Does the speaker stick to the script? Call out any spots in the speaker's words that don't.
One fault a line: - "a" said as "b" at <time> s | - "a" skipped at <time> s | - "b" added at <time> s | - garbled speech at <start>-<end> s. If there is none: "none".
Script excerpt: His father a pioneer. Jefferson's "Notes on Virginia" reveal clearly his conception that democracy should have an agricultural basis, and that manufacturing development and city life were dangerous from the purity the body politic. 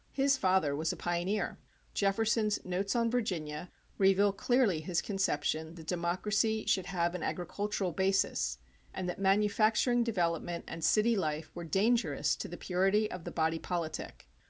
- "was" added at 0.8 s
- "from" said as "to" at 12.4 s
- "of" added at 13.1 s